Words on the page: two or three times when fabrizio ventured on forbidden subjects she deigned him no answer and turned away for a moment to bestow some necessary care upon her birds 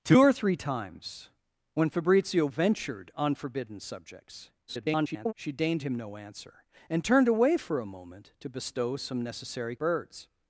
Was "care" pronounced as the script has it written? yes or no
no